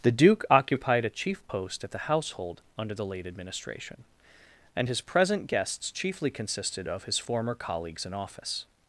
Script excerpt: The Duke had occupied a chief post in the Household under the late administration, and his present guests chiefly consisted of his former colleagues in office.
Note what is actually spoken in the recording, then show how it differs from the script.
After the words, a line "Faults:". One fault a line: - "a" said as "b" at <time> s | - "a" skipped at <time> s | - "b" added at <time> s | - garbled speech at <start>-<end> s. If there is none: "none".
The Duke occupied a chief post at the Household under the late administration, and his present guests chiefly consisted of his former colleagues in office.
Faults:
- "had" skipped at 0.4 s
- "in" said as "at" at 1.8 s